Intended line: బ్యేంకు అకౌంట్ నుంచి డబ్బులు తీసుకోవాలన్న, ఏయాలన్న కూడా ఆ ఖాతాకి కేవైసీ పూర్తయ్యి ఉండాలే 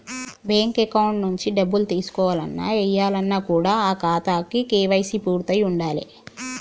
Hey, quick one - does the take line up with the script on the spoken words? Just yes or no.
yes